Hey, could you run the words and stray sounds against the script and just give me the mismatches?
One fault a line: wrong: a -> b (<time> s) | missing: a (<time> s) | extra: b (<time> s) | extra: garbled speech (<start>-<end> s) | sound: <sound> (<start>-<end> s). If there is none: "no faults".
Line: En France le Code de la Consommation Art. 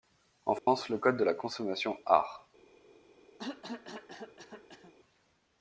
sound: dropout (0.6-0.7 s)
sound: cough (3.4-4.9 s)